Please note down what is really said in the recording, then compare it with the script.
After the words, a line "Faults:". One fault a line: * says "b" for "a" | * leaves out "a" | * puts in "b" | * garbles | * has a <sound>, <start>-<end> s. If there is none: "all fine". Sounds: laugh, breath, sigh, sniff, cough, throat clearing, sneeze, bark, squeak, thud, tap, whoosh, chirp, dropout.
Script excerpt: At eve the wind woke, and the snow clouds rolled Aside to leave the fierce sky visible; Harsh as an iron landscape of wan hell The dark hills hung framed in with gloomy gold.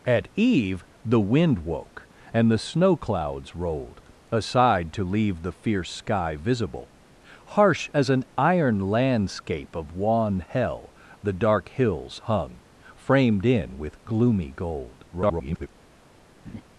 At eve the wind woke, and the snow clouds rolled Aside to leave the fierce sky visible; Harsh as an iron landscape of wan hell The dark hills hung framed in with gloomy gold. [garbled]
Faults:
* garbles
* has a laugh, 16.4-16.6 s